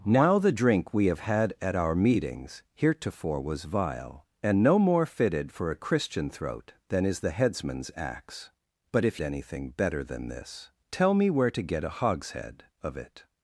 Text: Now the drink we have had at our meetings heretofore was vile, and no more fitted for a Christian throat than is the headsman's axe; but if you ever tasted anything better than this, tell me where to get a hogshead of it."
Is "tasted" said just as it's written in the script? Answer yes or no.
no